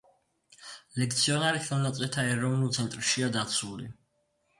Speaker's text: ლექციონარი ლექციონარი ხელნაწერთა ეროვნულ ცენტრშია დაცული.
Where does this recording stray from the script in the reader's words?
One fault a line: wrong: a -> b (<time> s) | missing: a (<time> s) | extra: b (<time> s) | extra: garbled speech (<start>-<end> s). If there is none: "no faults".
missing: ლექციონარი (1.6 s)